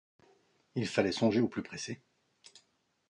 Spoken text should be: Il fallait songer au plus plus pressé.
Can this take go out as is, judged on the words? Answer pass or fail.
fail